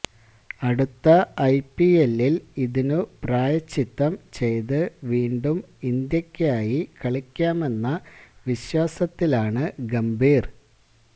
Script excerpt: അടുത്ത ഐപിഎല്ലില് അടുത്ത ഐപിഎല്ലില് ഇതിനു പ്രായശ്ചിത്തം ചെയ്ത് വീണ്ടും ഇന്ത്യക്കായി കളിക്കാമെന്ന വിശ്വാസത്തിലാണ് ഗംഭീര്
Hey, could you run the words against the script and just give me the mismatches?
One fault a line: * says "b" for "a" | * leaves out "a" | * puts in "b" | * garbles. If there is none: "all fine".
* leaves out "അടുത്ത ഐപിഎല്ലില്"